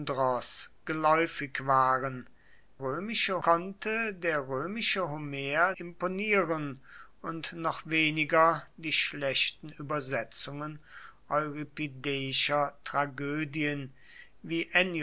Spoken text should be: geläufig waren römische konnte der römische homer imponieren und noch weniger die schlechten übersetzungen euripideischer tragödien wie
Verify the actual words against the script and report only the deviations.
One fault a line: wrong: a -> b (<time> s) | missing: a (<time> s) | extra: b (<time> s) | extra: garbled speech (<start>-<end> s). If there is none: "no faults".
no faults